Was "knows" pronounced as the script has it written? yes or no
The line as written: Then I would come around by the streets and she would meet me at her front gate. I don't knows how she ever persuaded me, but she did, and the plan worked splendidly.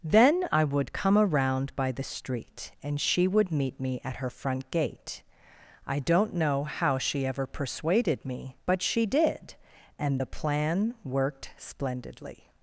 no